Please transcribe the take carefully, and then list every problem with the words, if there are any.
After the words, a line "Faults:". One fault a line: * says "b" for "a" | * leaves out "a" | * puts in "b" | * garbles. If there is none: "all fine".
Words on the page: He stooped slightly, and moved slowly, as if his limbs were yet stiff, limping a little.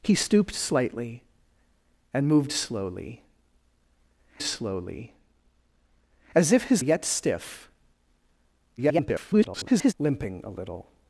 He stooped slightly, and moved slowly slowly, as if his yet stiff, [garbled] limping a little.
Faults:
* puts in "slowly"
* leaves out "limbs were"
* garbles